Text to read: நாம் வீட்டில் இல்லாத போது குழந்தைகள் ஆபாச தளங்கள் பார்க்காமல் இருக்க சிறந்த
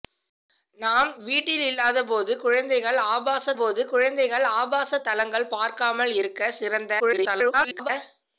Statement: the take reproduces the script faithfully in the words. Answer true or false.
false